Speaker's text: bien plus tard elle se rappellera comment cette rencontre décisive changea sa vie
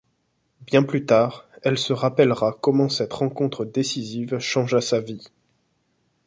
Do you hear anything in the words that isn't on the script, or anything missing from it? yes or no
no